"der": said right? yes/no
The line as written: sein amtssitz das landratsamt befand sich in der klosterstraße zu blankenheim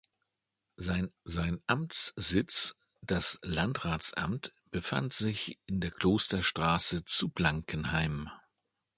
yes